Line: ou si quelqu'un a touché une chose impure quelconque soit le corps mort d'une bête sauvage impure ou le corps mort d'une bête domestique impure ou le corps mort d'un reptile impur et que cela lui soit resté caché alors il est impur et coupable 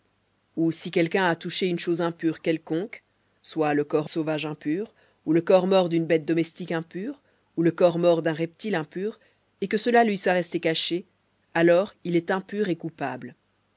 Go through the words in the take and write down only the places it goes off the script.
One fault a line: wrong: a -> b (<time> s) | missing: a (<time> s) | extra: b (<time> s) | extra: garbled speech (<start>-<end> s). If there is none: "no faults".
missing: mort d'une bête (4.1 s)